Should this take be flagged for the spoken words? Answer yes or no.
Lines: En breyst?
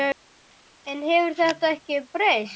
yes